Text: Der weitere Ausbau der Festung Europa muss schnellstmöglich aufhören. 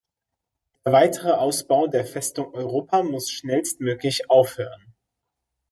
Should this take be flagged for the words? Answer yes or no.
no